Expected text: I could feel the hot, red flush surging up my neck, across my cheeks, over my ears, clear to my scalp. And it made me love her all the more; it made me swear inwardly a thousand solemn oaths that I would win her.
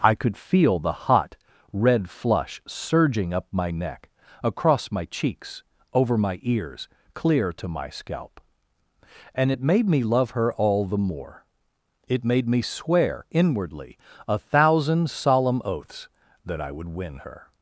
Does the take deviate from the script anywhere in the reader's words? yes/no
no